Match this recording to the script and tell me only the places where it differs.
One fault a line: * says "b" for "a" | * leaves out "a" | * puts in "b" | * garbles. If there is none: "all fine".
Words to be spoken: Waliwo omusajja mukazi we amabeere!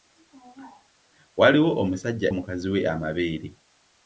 all fine